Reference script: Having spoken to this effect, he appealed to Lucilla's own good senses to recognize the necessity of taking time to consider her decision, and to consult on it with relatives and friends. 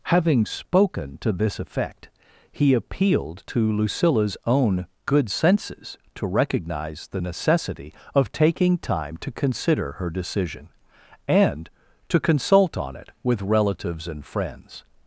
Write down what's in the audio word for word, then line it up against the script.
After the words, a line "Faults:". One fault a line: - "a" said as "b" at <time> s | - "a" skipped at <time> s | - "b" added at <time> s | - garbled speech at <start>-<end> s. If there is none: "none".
Having spoken to this effect, he appealed to Lucilla's own good senses to recognize the necessity of taking time to consider her decision, and to consult on it with relatives and friends.
Faults:
none